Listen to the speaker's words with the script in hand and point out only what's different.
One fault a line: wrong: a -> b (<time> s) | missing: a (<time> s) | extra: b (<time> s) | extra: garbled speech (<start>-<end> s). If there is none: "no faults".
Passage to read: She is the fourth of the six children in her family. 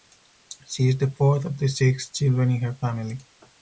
no faults